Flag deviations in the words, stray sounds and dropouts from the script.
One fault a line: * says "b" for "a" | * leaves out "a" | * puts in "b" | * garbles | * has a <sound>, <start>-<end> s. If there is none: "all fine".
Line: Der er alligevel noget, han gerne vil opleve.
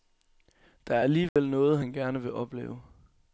* has a dropout, 1.3-1.4 s